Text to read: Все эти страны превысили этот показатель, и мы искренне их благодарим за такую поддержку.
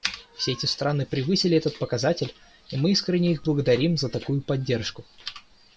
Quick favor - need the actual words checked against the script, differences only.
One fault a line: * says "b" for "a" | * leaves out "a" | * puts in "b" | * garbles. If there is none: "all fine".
all fine